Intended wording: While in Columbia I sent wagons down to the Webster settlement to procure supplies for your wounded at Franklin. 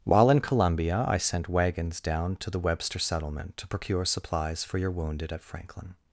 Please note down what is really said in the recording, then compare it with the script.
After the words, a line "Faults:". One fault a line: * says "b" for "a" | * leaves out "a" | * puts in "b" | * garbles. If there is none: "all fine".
While in Columbia I sent wagons down to the Webster settlement to procure supplies for your wounded at Franklin.
Faults:
all fine